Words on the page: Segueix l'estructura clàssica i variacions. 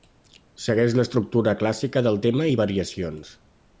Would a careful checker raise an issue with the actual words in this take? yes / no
yes